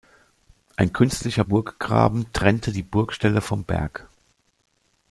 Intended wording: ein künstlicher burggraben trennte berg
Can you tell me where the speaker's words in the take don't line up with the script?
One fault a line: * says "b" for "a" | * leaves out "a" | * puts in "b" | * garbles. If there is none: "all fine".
* puts in "die burgstelle vom"